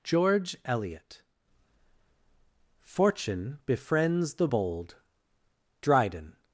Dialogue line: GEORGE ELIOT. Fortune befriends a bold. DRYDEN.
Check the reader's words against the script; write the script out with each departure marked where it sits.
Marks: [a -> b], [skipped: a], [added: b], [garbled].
GEORGE ELIOT. Fortune befriends [a -> the] bold. DRYDEN.